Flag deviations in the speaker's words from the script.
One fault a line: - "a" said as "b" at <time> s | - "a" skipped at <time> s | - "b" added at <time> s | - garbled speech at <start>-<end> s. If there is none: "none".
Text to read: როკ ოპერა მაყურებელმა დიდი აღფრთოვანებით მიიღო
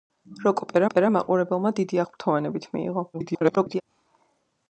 - "ოპერა" added at 0.9 s
- garbled speech at 3.1-3.8 s